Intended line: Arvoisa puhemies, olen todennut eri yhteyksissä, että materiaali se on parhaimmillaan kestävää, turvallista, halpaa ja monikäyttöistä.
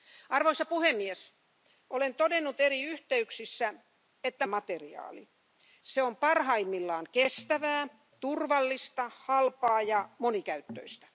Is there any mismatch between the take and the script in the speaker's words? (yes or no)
no